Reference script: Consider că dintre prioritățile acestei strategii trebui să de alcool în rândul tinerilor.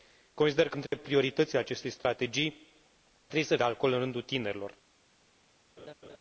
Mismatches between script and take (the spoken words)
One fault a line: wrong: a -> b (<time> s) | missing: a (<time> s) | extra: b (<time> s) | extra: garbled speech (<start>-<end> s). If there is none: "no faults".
no faults